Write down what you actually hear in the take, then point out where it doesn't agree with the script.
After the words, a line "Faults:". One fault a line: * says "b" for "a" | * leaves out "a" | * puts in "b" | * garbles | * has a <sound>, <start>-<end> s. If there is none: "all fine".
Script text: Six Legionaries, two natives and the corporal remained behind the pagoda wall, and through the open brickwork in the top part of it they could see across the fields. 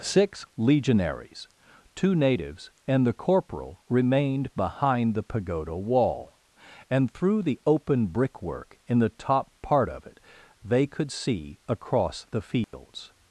Six Legionaries, two natives and the corporal remained behind the pagoda wall, and through the open brickwork in the top part of it they could see across the fields.
Faults:
* has a dropout, 12.6-12.7 s